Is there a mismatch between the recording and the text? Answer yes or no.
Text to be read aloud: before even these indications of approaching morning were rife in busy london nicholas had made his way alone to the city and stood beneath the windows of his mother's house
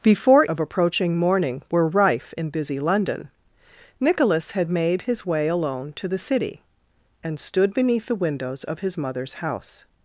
yes